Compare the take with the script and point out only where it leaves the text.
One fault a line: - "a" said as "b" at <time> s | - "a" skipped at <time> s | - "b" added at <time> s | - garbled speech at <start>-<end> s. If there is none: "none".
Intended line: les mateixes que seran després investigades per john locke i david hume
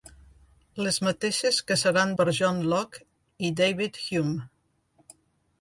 - "després investigades" skipped at 2.1 s